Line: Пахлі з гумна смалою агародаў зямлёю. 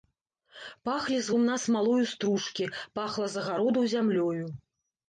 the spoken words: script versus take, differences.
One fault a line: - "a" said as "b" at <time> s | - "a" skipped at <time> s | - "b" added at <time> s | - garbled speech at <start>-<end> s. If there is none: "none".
- "стружкі пахла з" added at 2.1 s